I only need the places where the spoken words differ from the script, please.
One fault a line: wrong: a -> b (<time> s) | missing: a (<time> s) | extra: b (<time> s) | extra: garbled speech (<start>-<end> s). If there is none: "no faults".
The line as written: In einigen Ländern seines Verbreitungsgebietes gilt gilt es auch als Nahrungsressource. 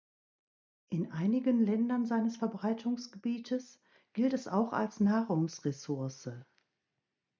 missing: gilt (4.3 s)